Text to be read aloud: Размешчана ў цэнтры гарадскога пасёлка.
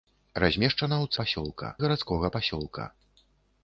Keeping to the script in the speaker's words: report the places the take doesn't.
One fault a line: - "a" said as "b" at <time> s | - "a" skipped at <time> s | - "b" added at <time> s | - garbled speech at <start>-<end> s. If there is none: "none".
- "цэнтры" said as "пасёлка" at 1.2 s